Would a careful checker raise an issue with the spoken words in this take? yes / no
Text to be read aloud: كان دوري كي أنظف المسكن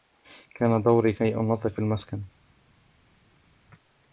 no